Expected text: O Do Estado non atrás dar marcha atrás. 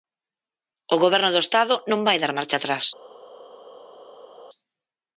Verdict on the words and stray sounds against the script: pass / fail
fail